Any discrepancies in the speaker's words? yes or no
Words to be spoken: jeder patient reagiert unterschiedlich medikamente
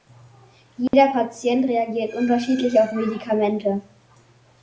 yes